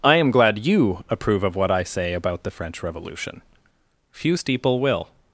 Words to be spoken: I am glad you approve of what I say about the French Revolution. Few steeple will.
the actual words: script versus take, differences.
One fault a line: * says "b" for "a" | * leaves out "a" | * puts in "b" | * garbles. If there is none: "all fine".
all fine